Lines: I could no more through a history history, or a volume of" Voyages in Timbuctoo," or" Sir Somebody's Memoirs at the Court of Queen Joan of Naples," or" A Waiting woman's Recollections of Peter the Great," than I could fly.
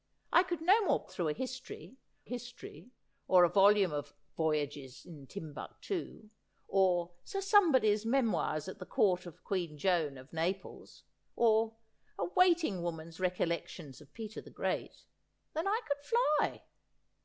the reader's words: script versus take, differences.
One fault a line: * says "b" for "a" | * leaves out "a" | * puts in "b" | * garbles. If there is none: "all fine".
all fine